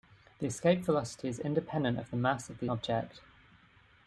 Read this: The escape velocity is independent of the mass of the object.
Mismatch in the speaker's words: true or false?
false